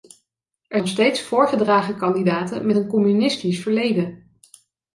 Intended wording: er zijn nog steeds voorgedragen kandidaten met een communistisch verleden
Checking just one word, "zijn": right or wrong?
wrong